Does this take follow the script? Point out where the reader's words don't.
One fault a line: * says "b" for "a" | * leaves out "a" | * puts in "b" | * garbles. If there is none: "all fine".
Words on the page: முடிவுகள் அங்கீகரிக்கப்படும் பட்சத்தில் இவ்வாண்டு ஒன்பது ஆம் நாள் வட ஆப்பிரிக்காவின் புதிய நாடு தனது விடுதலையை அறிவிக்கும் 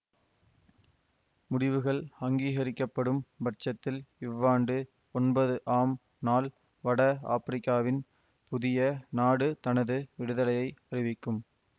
all fine